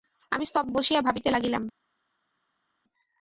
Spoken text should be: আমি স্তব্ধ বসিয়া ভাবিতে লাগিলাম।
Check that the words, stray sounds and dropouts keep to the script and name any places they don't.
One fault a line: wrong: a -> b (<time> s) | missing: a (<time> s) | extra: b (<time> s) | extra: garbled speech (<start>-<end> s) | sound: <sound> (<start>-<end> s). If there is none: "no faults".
no faults